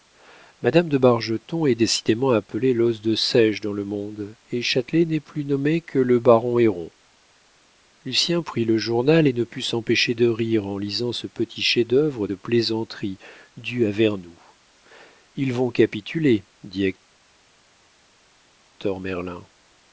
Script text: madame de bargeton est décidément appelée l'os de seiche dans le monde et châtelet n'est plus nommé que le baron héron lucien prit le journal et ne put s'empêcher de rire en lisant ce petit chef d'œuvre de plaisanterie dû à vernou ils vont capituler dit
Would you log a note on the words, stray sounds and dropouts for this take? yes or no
no